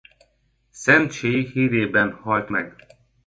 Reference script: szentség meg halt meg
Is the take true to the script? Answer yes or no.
no